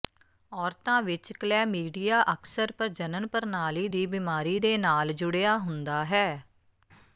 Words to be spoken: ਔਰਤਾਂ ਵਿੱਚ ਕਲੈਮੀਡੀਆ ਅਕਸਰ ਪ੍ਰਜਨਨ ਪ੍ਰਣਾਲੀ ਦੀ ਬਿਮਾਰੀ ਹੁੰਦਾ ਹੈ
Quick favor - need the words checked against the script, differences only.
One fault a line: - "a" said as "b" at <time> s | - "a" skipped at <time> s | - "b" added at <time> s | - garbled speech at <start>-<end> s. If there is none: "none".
- "ਦੇ ਨਾਲ ਜੁੜਿਆ" added at 4.6 s